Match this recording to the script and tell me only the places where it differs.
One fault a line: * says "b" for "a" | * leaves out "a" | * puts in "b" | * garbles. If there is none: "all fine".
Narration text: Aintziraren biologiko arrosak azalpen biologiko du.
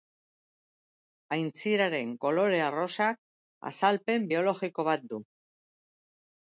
* says "kolore" for "biologiko"
* puts in "bat"